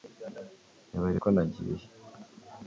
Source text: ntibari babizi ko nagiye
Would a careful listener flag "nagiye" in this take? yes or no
no